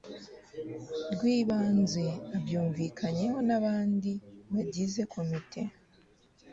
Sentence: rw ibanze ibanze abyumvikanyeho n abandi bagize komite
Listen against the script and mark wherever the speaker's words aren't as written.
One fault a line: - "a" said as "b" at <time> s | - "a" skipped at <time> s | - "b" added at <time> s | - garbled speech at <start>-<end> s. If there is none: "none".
- "ibanze" skipped at 2.0 s